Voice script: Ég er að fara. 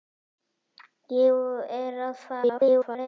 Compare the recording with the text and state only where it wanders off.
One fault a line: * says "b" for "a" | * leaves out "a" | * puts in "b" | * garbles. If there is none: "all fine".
* garbles